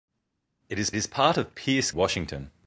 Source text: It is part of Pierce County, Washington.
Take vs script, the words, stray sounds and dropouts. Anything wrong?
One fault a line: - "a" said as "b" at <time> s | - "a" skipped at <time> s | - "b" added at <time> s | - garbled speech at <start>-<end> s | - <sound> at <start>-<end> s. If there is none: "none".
- "is" added at 1.0 s
- "County" skipped at 1.9 s